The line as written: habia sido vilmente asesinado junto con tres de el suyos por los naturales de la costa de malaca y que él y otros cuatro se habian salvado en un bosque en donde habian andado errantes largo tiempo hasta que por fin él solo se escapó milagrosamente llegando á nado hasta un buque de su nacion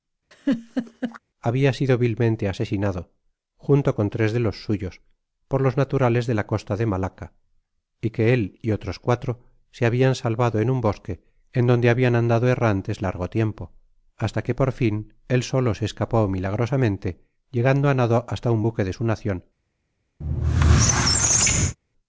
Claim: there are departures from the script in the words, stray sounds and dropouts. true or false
true